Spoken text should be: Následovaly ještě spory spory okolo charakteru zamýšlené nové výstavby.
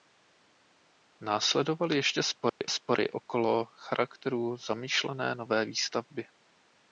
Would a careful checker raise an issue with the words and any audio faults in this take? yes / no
yes